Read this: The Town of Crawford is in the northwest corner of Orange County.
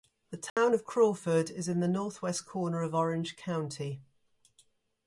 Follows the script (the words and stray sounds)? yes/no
no